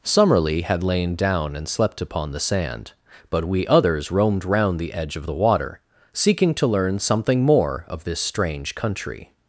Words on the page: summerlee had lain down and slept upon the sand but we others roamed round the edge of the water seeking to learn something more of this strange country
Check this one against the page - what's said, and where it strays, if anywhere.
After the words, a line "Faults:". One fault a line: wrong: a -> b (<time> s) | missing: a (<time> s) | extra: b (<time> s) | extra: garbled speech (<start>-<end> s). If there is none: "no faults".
summerlee had lain down and slept upon the sand but we others roamed round the edge of the water seeking to learn something more of this strange country
Faults:
no faults